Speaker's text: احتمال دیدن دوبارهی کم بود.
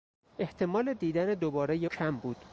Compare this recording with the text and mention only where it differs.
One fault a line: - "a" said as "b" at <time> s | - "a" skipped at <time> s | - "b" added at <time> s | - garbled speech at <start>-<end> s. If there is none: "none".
none